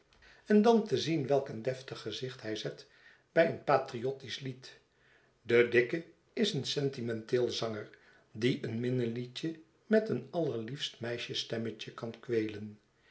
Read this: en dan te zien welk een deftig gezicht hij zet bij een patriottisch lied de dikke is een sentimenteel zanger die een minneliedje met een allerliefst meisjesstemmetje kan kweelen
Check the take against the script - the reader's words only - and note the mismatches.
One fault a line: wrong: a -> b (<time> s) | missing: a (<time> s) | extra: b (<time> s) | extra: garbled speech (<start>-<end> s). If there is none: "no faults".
no faults